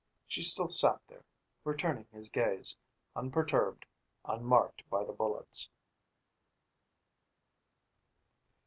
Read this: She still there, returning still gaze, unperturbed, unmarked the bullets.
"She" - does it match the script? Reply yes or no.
yes